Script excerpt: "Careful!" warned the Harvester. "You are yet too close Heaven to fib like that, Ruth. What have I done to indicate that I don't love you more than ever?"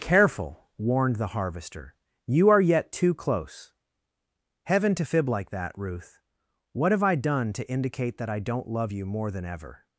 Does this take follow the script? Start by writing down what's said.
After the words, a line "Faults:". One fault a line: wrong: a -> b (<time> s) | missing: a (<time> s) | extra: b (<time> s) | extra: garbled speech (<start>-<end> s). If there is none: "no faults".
"Careful!" warned the Harvester. "You are yet too close Heaven to fib like that, Ruth. What have I done to indicate that I don't love you more than ever?"
Faults:
no faults